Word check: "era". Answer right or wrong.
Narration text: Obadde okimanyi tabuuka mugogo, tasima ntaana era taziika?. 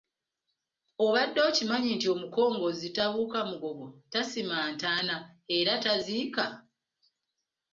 right